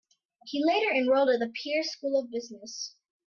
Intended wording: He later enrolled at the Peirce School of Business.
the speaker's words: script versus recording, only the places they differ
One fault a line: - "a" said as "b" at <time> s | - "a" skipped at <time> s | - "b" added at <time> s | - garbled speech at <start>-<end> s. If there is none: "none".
none